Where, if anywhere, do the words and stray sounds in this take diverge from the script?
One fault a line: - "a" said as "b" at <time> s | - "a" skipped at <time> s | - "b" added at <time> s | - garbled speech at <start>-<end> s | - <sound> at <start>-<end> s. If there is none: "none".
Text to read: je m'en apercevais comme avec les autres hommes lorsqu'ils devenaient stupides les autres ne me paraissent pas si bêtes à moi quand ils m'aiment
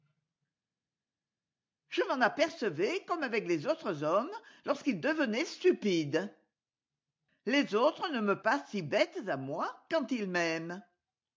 - "paraissent" skipped at 8.4 s